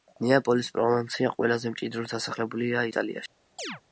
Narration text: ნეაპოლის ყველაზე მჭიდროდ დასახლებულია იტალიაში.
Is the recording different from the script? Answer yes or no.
yes